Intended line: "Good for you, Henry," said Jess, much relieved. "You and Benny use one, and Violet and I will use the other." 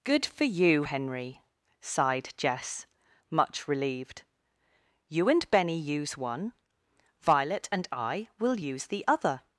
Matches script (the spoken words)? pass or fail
fail